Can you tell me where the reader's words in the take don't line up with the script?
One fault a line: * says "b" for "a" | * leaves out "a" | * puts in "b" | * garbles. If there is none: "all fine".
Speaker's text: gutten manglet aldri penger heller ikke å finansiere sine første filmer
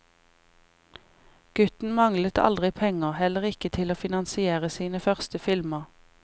* puts in "til"